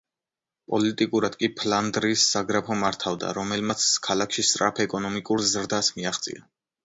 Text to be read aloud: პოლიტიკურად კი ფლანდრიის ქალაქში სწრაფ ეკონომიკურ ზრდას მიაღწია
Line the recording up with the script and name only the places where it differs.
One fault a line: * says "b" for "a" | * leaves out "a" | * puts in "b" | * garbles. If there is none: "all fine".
* puts in "საგრაფო მართავდა რომელმაც"